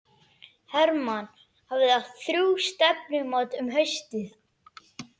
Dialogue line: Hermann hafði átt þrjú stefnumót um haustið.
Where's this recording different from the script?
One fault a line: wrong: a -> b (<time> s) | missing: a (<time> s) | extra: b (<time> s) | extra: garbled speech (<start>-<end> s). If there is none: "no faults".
no faults